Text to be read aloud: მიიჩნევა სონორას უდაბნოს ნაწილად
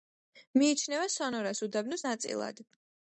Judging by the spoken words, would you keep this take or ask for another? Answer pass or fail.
pass